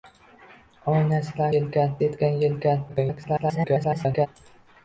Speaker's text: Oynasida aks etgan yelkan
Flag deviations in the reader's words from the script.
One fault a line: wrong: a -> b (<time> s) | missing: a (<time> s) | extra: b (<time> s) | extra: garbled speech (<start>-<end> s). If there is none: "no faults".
wrong: aks -> yelkan (1.6 s)
extra: garbled speech (2.9-4.3 s)